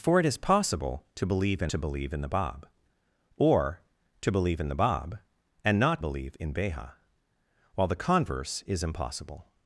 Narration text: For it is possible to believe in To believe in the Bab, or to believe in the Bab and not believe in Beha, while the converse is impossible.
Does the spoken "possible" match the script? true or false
true